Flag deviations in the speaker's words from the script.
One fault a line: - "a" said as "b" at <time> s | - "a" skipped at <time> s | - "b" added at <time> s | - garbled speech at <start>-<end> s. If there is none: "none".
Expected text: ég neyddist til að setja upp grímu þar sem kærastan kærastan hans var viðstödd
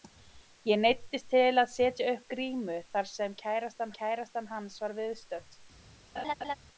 none